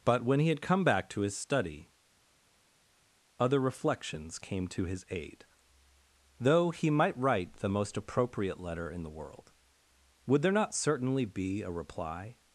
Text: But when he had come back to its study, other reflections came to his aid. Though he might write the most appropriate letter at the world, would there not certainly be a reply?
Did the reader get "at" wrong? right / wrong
wrong